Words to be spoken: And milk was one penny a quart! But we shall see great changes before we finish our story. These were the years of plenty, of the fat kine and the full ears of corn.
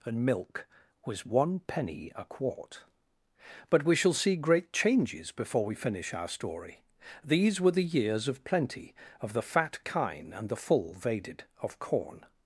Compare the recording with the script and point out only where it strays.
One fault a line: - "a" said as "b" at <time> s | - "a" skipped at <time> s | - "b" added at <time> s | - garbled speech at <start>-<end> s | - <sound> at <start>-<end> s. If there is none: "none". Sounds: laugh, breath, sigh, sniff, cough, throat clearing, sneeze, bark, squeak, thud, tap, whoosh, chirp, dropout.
- "ears" said as "vaded" at 10.9 s